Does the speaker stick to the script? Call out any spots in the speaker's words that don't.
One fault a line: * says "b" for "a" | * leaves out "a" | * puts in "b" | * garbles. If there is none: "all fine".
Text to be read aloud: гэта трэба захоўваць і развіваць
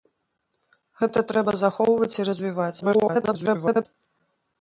* garbles